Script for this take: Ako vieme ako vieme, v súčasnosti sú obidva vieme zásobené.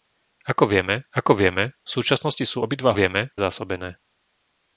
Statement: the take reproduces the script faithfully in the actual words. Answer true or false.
true